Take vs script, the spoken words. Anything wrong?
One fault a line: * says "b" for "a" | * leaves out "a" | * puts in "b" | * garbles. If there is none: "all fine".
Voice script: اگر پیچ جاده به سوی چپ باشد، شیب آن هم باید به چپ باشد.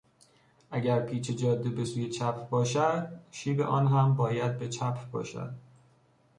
all fine